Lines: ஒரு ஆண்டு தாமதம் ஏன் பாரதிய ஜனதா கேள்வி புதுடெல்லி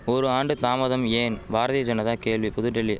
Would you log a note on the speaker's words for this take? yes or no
no